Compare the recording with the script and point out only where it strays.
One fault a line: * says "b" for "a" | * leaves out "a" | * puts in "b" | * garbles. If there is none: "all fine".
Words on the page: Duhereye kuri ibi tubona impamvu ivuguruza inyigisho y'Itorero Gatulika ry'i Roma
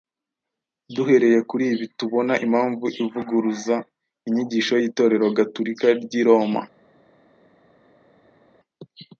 all fine